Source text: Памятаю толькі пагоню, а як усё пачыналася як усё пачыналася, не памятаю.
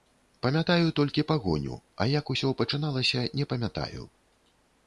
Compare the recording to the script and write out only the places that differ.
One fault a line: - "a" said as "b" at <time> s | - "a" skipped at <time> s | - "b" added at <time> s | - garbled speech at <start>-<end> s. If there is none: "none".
- "як усё пачыналася" skipped at 3.3 s